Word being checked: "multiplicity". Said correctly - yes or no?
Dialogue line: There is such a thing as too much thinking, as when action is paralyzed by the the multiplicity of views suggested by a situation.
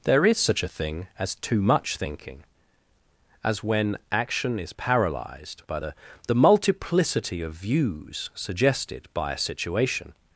yes